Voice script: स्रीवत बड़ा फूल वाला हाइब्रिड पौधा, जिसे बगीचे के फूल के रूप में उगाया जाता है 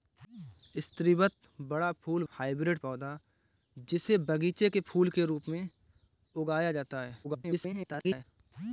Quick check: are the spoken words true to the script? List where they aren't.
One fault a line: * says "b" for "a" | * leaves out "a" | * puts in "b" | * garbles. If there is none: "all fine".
* leaves out "वाला"
* garbles